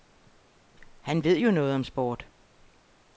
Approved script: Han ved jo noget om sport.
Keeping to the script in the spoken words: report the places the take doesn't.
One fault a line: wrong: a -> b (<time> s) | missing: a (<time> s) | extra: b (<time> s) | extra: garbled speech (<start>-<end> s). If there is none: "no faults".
no faults